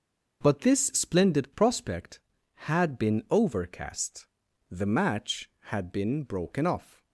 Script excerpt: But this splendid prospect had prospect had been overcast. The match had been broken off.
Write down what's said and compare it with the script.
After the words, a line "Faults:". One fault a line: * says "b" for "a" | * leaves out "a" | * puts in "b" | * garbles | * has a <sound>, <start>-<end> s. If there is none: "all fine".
But this splendid prospect had been overcast. The match had been broken off.
Faults:
* leaves out "prospect had"